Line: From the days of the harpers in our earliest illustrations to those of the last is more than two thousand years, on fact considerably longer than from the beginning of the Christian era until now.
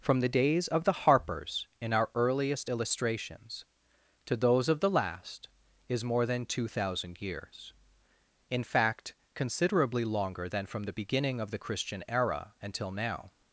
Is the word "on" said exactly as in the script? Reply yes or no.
no